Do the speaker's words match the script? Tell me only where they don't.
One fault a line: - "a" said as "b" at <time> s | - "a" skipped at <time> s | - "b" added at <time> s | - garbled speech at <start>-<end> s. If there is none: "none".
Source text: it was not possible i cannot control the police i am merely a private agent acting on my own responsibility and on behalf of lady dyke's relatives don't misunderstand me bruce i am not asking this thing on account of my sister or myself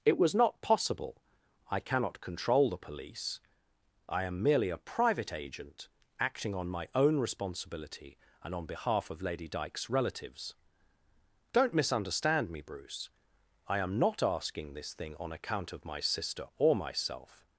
none